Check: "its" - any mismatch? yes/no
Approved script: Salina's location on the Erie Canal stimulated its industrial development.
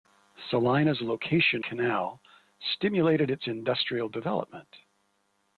no